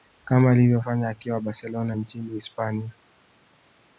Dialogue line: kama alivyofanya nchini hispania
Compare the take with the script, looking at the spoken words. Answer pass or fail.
fail